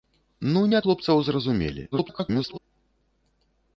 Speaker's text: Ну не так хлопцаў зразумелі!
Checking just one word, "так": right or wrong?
wrong